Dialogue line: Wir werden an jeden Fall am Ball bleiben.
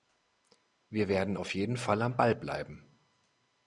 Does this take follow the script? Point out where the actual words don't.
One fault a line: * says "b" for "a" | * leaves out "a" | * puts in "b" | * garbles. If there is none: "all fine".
* says "auf" for "an"